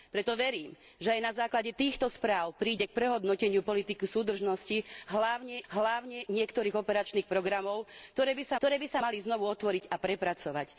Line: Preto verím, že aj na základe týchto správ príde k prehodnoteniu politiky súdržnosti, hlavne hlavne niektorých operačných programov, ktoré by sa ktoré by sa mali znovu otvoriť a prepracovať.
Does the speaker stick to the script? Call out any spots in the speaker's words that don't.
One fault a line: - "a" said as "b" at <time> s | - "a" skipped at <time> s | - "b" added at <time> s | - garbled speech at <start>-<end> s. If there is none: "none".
none